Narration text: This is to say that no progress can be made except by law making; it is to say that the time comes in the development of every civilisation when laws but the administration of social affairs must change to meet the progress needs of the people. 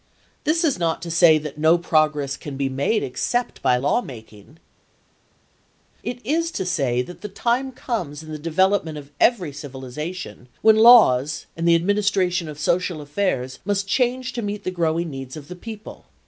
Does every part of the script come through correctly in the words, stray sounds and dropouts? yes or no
no